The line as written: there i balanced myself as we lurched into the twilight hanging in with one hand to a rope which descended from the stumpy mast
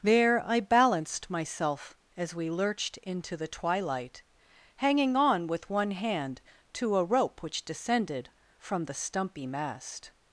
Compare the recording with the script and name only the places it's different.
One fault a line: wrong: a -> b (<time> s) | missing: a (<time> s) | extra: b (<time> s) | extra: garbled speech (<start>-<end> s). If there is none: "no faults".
wrong: in -> on (5.2 s)